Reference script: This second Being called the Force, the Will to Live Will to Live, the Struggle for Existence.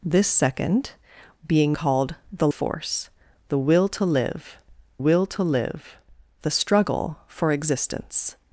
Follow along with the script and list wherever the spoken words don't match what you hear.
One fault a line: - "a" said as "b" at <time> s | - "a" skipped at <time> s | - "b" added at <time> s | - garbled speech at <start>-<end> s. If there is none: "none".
none